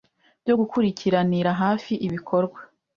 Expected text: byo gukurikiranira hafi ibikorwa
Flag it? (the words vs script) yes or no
no